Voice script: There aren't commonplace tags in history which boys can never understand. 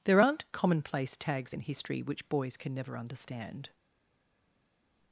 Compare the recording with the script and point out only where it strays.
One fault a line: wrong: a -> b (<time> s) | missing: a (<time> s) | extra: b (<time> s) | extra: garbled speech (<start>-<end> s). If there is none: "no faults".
no faults